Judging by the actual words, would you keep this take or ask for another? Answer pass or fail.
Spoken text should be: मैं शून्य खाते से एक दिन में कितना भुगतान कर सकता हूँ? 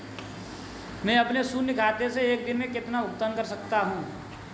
fail